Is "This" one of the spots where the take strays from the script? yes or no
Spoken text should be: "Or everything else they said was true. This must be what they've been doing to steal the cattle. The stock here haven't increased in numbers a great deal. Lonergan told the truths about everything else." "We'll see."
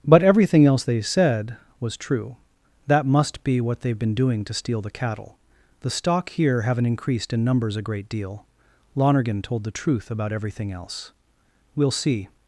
yes